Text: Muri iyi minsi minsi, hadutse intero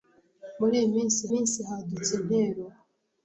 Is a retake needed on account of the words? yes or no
no